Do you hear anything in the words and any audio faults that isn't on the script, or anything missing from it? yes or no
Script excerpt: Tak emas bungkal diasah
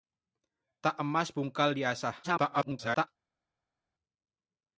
yes